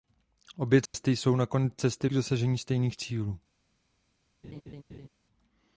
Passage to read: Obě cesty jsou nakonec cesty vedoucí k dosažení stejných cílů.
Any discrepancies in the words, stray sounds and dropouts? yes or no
yes